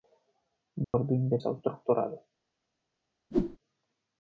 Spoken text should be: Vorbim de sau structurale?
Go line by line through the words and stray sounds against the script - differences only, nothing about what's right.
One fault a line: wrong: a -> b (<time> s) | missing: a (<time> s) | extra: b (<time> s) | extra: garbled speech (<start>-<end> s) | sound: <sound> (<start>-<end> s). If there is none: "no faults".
sound: dropout (0.8-0.9 s)
sound: whoosh (3.3-3.6 s)